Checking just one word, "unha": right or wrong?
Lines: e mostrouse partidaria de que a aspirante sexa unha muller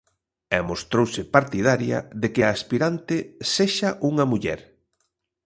right